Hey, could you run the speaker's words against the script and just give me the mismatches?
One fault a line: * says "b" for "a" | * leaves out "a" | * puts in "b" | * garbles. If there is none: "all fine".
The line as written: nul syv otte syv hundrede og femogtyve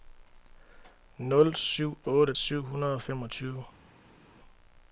all fine